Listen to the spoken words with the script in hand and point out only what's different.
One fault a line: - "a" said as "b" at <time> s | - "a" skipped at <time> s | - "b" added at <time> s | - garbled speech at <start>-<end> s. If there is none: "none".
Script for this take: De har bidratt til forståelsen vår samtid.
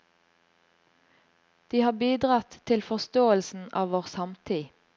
- "av" added at 3.8 s